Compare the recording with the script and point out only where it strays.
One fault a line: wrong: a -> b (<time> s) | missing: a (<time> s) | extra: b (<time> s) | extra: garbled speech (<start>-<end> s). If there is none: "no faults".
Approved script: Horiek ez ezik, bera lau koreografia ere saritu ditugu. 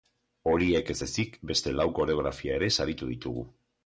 wrong: bera -> beste (1.5 s)